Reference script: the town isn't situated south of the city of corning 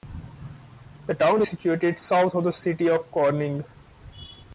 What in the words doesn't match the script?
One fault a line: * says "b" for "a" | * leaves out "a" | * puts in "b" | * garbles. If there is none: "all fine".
* says "is" for "isn't"